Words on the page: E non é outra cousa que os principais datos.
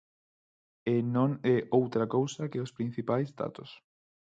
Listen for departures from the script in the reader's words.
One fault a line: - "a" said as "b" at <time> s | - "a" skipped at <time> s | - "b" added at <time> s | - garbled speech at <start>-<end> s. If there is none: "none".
none